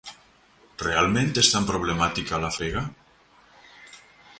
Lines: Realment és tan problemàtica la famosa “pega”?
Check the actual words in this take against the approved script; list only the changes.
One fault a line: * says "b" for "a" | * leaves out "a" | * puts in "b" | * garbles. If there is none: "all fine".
* leaves out "famosa"